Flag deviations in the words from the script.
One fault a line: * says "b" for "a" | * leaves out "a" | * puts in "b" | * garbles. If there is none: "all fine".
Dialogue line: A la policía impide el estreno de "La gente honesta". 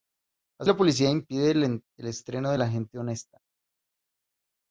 all fine